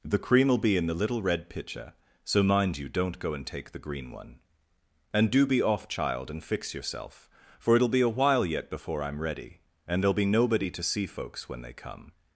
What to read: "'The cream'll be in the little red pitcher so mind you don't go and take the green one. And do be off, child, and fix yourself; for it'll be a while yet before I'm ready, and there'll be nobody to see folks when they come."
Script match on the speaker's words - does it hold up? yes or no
yes